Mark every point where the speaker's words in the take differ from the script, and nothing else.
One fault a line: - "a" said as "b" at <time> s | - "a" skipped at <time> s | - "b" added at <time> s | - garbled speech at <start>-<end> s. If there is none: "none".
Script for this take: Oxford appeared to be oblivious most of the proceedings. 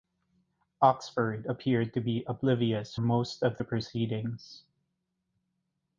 none